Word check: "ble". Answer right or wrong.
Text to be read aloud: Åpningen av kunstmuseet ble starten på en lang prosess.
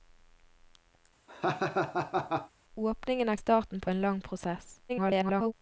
wrong